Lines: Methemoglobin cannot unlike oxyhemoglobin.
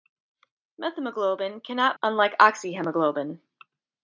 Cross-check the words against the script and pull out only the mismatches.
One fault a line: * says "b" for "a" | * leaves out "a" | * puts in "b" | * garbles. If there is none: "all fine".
all fine